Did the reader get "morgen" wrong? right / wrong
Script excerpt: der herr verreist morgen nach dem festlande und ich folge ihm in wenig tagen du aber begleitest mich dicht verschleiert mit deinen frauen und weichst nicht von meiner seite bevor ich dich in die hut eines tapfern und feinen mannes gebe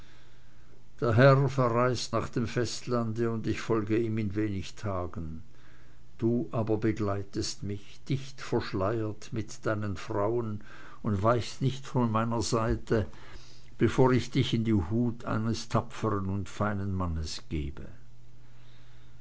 wrong